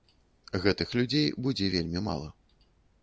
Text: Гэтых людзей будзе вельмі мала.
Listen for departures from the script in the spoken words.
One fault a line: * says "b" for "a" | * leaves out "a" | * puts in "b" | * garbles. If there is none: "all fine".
all fine